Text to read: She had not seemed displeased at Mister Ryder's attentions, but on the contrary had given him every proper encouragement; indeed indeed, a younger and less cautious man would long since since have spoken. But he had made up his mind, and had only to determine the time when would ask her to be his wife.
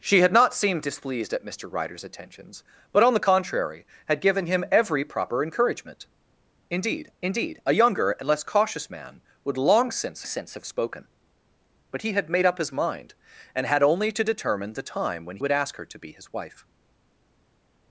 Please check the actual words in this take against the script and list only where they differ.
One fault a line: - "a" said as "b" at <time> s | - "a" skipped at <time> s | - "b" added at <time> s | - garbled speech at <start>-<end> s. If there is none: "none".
none